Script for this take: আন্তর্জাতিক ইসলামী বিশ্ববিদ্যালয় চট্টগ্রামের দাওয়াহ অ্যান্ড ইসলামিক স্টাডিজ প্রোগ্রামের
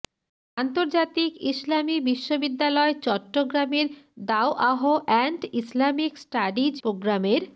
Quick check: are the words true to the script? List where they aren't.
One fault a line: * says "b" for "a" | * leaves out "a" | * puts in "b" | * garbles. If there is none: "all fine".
all fine